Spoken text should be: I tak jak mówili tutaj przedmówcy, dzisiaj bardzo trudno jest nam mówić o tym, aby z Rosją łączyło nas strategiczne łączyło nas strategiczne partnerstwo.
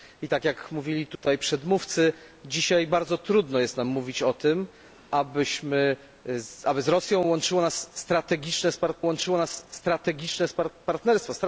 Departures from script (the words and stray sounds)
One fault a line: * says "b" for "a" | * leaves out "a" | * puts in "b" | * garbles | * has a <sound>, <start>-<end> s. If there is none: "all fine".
* has a dropout, 1.2-1.2 s